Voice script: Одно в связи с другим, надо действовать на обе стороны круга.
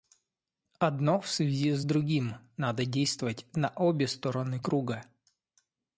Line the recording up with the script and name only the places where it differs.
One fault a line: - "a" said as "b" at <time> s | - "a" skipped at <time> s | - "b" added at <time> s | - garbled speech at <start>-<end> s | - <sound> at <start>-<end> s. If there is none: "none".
none